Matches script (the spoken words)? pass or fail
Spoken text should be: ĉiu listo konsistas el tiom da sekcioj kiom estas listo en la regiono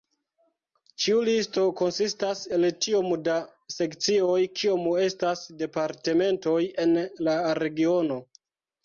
fail